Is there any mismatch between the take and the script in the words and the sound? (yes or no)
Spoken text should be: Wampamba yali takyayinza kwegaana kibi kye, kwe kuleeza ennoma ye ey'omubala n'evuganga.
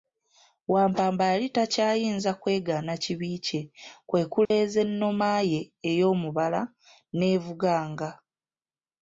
yes